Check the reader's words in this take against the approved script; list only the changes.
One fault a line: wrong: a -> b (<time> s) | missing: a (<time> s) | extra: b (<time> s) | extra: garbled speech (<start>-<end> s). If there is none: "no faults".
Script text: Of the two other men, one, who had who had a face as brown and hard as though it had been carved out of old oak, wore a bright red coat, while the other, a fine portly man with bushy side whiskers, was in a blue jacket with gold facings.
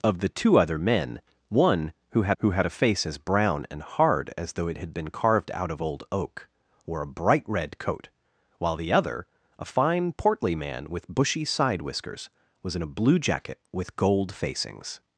no faults